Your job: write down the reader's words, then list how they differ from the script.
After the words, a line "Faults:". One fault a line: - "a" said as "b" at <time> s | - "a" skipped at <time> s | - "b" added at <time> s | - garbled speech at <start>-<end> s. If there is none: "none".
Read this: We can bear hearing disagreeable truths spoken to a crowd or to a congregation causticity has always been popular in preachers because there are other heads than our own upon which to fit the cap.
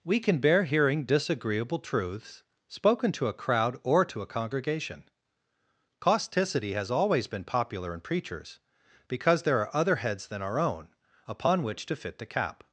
We can bear hearing disagreeable truths spoken to a crowd or to a congregation causticity has always been popular in preachers because there are other heads than our own upon which to fit the cap.
Faults:
none